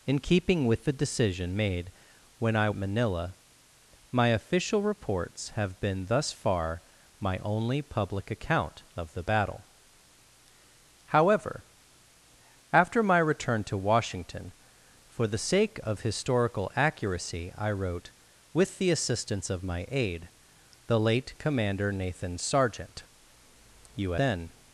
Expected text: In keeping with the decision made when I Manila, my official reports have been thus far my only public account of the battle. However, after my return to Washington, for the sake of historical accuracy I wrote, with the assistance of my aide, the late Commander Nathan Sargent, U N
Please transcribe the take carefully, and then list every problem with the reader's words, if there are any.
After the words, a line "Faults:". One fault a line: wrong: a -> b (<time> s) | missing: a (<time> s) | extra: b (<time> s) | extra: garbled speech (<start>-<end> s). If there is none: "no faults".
In keeping with the decision made when I Manila, my official reports have been thus far my only public account of the battle. However, after my return to Washington, for the sake of historical accuracy I wrote, with the assistance of my aide, the late Commander Nathan Sargent, U N
Faults:
no faults